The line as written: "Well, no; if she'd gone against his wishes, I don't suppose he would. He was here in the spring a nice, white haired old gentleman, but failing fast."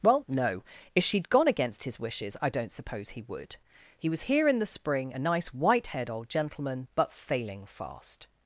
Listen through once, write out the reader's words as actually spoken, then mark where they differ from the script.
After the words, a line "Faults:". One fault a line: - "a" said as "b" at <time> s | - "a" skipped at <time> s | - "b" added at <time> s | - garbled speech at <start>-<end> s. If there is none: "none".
"Well, no; if she'd gone against his wishes, I don't suppose he would. He was here in the spring a nice, white haired old gentleman, but failing fast."
Faults:
none